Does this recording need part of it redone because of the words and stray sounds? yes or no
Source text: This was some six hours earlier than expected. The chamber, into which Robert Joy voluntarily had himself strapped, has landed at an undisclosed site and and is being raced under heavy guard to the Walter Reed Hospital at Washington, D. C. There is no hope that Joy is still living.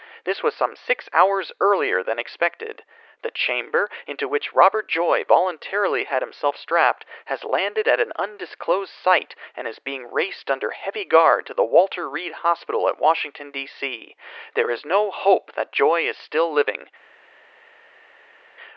yes